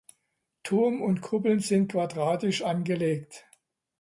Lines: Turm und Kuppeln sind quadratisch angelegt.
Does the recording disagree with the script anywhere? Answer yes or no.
no